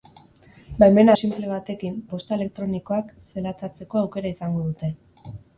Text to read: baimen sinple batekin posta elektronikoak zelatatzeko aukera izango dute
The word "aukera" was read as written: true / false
true